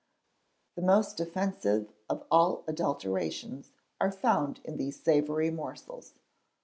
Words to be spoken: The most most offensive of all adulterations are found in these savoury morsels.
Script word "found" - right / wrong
right